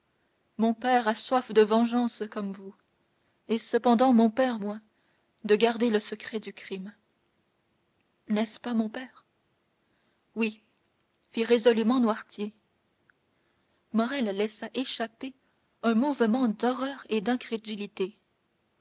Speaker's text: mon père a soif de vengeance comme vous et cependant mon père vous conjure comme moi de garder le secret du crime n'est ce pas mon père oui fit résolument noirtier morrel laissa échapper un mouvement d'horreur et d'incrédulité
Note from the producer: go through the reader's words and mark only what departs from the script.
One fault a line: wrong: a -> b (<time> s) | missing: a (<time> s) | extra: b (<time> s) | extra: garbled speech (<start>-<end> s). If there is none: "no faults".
missing: vous conjure comme (4.6 s)